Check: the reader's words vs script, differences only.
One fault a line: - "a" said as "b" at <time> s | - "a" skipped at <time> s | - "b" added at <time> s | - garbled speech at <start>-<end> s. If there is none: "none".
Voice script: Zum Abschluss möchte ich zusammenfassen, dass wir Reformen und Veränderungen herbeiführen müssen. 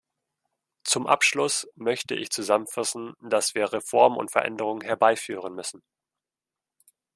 none